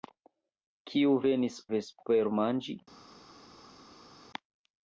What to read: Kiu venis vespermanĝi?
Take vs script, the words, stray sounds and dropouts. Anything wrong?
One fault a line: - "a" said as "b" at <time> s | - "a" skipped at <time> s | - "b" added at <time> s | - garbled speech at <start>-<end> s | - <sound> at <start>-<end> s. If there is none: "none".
none